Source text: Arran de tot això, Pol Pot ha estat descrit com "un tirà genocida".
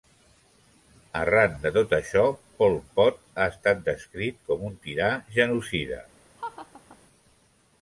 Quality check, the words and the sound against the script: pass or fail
fail